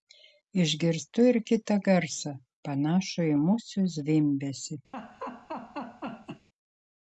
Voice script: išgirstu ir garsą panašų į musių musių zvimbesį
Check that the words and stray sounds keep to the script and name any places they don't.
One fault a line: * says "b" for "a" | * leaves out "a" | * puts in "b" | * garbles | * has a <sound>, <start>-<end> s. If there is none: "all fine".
* puts in "kitą"
* leaves out "musių"
* has a laugh, 4.9-6.5 s